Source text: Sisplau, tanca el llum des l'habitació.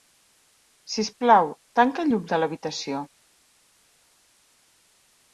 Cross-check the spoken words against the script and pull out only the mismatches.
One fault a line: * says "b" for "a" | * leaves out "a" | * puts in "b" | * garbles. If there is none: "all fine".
* says "de" for "des"